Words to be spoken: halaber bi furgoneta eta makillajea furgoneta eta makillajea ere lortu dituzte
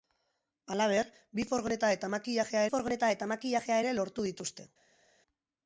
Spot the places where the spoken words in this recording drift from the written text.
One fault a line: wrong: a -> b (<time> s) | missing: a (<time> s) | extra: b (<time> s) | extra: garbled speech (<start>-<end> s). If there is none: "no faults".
no faults